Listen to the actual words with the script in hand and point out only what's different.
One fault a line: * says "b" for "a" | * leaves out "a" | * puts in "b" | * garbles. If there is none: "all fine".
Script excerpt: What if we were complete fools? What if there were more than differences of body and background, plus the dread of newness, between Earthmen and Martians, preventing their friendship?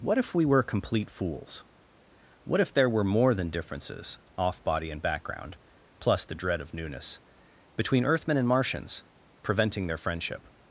* says "off" for "of"